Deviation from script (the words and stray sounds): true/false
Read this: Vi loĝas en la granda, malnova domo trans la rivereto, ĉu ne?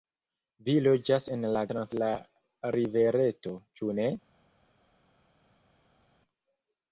true